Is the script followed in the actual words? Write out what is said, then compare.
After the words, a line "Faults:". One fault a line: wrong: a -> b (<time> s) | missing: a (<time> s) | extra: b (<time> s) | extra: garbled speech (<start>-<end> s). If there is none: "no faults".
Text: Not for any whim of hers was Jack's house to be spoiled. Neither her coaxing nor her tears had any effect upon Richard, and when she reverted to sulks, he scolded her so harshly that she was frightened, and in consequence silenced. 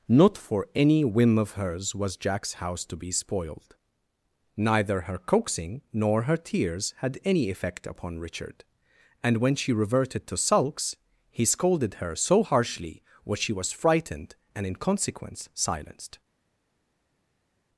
Not for any whim of hers was Jack's house to be spoiled. Neither her coaxing nor her tears had any effect upon Richard, and when she reverted to sulks, he scolded her so harshly what she was frightened, and in consequence silenced.
Faults:
wrong: that -> what (13.3 s)